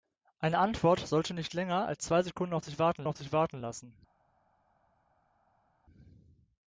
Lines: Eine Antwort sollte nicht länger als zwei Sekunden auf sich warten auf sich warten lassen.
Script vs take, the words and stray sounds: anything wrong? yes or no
no